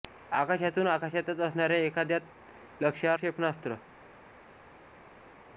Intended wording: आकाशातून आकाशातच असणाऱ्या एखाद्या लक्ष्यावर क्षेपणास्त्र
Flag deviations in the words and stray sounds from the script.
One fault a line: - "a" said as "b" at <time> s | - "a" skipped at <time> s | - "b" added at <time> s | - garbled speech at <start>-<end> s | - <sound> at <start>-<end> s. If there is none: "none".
none